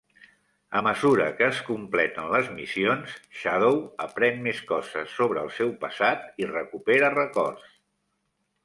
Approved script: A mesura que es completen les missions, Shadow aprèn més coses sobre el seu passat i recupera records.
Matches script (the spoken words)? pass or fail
pass